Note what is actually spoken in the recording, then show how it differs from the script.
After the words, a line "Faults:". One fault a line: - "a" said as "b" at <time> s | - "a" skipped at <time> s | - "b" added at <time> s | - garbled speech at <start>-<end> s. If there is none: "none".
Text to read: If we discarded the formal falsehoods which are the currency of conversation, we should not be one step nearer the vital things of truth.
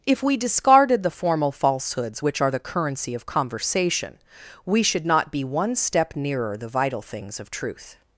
If we discarded the formal falsehoods which are the currency of conversation, we should not be one step nearer the vital things of truth.
Faults:
none